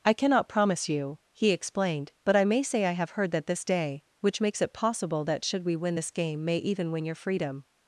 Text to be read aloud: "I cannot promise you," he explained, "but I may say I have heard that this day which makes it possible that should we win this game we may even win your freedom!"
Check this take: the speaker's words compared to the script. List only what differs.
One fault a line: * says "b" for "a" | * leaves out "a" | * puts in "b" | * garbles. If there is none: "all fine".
* leaves out "we"